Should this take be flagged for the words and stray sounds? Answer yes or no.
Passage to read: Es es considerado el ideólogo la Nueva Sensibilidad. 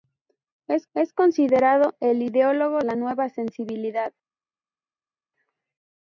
no